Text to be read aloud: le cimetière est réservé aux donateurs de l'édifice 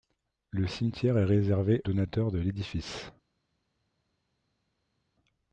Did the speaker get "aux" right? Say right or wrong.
wrong